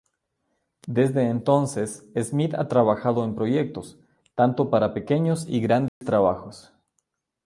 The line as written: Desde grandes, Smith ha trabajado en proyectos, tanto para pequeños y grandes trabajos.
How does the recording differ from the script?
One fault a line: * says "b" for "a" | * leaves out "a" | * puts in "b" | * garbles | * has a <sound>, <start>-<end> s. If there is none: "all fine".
* says "entonces" for "grandes"
* has a dropout, 5.9-6.0 s